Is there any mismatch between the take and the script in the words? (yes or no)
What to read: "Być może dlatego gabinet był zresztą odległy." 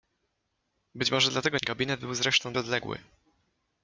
no